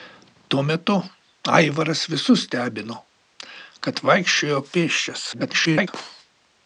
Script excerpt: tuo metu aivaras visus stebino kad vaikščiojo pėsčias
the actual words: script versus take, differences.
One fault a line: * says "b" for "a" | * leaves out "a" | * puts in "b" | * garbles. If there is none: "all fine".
* garbles